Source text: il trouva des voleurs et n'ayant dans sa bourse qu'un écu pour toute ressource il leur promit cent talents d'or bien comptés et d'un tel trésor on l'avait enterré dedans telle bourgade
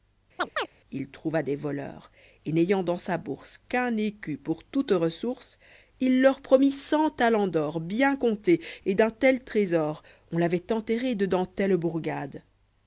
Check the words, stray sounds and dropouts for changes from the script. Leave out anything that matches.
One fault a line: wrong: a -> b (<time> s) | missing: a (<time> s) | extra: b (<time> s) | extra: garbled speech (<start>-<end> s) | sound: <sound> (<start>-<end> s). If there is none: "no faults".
sound: chirp (0.4-0.7 s)